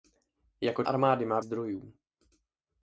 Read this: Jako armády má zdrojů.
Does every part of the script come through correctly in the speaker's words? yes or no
yes